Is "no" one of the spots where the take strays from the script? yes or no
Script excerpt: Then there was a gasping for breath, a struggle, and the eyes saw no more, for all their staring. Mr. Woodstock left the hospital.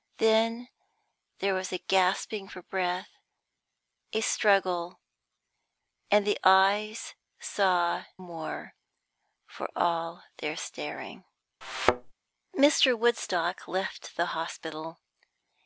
yes